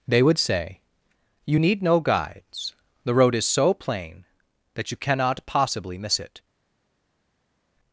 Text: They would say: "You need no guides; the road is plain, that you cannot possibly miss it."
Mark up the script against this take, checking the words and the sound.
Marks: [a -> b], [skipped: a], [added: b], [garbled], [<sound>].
They would say: "You need no guides; the road is [added: so] plain, that you cannot possibly miss it."